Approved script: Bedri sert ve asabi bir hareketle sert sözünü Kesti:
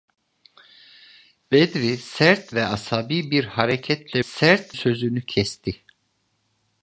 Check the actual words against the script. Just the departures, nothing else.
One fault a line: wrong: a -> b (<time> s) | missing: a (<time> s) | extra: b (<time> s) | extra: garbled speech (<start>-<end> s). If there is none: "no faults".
no faults